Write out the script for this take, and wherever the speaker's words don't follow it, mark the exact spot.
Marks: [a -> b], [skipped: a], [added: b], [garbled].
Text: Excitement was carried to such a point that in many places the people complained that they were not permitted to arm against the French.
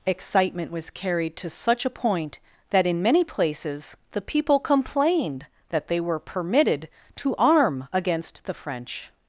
Excitement was carried to such a point that in many places the people complained that they were [skipped: not] permitted to arm against the French.